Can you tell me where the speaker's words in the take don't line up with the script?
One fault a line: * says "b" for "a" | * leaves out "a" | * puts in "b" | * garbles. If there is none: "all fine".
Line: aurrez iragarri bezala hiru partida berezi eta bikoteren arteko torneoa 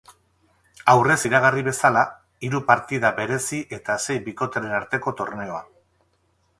* puts in "sei"